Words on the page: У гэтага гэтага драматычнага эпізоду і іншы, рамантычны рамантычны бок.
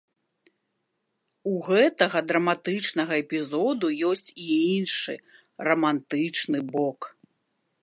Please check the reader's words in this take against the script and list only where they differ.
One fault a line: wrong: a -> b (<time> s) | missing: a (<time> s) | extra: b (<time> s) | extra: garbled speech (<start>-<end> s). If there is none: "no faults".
missing: гэтага (2.2 s)
extra: ёсць (4.1 s)
missing: рамантычны (6.6 s)